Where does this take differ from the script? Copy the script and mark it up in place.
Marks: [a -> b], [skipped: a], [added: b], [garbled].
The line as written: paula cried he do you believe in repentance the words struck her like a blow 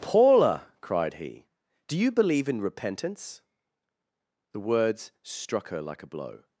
paula cried he do you believe in repentance the words struck her like a blow